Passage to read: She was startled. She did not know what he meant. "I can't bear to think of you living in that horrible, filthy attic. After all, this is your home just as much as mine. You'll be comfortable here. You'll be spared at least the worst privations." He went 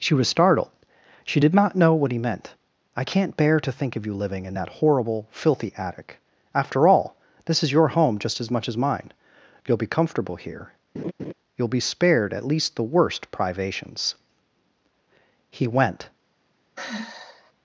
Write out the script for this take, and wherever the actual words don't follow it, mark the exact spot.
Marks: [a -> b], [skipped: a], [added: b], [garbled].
She was startled. She did not know what he meant. "I can't bear to think of you living in that horrible, filthy attic. After all, this is your home just as much as mine. You'll be comfortable here. You'll be spared at least the worst privations." He went